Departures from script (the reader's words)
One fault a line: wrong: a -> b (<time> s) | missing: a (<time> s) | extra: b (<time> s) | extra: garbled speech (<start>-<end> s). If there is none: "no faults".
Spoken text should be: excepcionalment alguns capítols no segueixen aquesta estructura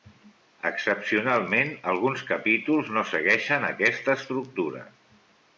no faults